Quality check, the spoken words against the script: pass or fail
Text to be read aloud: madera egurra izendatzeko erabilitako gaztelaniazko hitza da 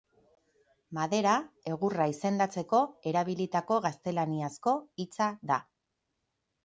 pass